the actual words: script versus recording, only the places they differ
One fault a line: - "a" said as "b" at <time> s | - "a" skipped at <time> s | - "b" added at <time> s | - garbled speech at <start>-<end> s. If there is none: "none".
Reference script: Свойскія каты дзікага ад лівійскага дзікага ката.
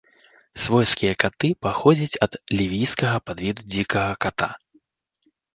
- "дзікага" said as "паходзяць" at 1.7 s
- "падвіду" added at 3.3 s